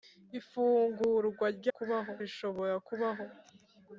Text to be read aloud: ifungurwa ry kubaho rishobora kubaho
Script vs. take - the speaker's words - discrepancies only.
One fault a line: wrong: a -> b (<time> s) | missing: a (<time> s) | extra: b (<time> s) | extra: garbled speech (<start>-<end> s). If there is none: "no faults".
no faults